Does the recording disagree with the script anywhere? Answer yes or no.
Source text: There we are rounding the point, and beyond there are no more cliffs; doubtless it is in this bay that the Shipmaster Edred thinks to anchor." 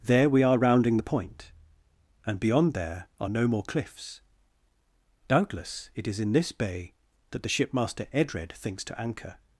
no